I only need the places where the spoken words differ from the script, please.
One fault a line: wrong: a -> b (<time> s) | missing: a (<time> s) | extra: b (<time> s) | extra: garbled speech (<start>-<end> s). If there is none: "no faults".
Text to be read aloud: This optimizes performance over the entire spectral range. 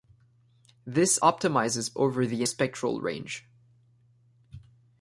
missing: performance (1.9 s)
missing: entire (2.4 s)